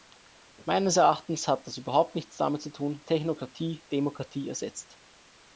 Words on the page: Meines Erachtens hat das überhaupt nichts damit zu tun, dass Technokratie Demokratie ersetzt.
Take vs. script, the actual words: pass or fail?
fail